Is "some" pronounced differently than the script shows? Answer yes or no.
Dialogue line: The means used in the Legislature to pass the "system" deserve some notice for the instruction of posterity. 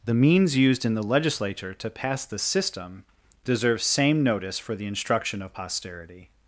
yes